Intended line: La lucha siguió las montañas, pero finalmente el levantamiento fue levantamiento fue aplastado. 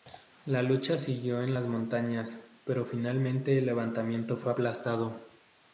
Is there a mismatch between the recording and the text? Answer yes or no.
yes